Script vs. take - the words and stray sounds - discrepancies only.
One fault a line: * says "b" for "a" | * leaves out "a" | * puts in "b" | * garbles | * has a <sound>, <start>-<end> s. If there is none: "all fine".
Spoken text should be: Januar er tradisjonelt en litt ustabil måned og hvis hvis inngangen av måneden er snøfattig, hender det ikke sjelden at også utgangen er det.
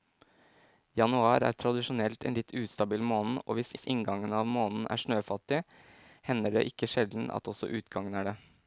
all fine